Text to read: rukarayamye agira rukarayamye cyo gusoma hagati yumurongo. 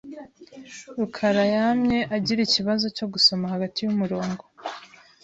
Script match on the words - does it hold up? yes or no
no